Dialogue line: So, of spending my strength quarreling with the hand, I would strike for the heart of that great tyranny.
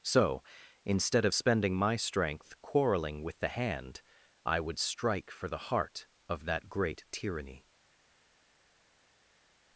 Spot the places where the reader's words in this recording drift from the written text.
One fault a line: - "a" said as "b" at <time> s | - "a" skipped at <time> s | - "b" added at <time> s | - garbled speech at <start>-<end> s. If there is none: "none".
- "instead" added at 0.8 s